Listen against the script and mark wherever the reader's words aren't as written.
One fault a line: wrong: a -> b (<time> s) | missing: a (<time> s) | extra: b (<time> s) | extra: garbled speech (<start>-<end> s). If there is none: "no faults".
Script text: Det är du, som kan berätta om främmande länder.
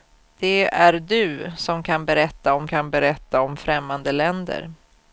extra: kan berätta om (2.7 s)